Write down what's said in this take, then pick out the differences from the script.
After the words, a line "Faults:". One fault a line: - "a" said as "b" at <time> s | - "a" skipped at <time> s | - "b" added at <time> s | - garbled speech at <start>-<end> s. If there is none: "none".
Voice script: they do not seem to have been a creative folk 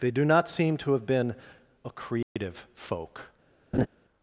they do not seem to have been a creative folk
Faults:
none